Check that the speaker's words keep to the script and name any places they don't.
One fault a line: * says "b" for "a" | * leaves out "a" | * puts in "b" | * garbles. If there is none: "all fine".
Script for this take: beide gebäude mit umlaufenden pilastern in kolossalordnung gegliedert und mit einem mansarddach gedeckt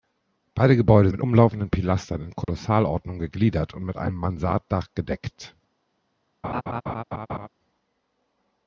all fine